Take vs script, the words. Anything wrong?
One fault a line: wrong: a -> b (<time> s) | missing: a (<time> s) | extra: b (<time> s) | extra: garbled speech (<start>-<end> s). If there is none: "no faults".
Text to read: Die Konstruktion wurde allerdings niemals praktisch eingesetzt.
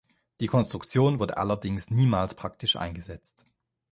no faults